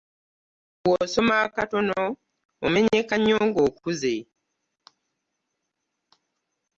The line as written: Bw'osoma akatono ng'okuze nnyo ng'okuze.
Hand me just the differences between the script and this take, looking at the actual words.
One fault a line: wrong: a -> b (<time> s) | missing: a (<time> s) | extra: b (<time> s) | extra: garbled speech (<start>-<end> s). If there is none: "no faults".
wrong: ng'okuze -> omenyeka (2.6 s)